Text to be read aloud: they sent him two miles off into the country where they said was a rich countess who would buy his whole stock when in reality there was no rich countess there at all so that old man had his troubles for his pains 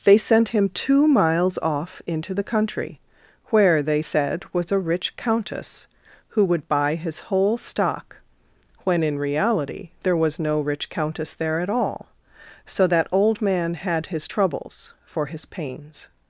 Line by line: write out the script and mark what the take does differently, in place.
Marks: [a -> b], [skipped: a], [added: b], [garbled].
they sent him two miles off into the country where they said was a rich countess who would buy his whole stock when in reality there was no rich countess there at all so that old man had his troubles for his pains